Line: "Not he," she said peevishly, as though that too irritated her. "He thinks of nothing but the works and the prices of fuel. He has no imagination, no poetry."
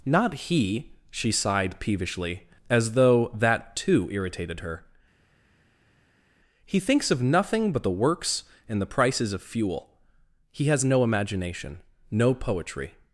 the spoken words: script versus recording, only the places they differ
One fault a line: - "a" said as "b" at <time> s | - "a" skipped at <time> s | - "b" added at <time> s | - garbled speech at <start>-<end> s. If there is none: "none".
- "said" said as "sighed" at 1.3 s